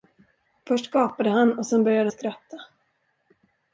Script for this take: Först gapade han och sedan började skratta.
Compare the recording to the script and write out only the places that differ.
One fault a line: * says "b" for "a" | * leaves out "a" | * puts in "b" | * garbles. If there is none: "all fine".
all fine